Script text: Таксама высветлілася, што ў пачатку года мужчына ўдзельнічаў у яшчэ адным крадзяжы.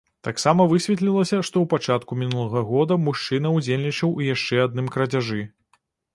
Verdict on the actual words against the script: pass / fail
fail